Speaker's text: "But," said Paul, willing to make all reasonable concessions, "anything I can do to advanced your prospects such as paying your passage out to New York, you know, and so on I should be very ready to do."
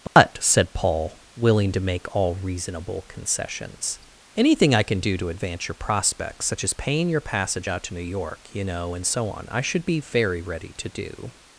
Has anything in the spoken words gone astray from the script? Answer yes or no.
yes